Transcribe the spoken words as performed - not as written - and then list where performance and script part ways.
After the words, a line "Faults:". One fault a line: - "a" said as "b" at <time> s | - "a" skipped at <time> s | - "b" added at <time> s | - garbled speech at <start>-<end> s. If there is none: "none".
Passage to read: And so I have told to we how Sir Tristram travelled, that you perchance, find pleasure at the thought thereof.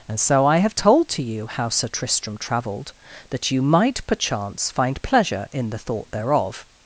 And so I have told to you how Sir Tristram travelled, that you might, perchance, find pleasure in the thought thereof.
Faults:
- "we" said as "you" at 1.2 s
- "might" added at 3.6 s
- "at" said as "in" at 5.5 s